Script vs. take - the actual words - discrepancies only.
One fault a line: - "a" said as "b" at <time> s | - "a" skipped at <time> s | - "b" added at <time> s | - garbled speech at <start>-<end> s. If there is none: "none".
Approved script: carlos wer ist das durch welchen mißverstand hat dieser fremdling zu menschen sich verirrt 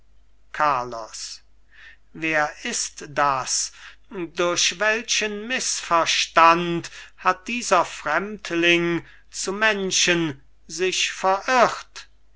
none